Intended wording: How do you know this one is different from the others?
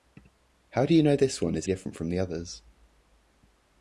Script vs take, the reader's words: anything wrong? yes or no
no